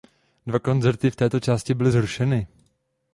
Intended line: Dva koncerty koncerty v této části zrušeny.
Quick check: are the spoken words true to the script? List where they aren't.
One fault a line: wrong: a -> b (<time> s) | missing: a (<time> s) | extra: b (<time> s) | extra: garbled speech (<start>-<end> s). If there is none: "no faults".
missing: koncerty (1.1 s)
extra: byly (1.7 s)